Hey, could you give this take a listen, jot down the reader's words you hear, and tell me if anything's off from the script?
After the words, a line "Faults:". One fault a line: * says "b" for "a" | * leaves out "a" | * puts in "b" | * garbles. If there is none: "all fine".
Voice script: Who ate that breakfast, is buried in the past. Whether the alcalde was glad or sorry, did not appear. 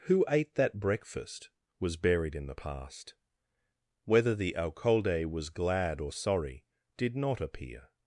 Who ate that breakfast, was buried in the past. Whether the alcalde was glad or sorry, did not appear.
Faults:
* says "was" for "is"